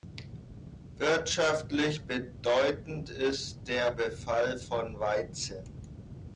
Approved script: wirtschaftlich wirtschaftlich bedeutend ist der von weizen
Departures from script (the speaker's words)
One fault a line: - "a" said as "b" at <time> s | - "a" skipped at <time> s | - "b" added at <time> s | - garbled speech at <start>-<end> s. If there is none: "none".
- "wirtschaftlich" skipped at 2.0 s
- "befall" added at 3.9 s